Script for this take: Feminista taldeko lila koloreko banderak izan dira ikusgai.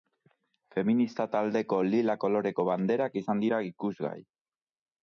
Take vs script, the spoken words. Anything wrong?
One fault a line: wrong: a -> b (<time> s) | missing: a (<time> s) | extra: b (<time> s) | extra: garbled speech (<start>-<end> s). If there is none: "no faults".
no faults